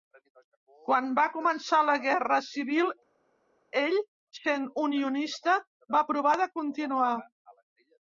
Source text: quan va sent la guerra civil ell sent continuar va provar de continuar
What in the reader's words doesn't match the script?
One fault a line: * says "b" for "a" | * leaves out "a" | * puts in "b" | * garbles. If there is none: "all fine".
* says "començar" for "sent"
* says "unionista" for "continuar"